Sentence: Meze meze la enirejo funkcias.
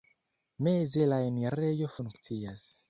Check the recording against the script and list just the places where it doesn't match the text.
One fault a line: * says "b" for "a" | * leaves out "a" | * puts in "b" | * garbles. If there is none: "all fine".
* leaves out "meze"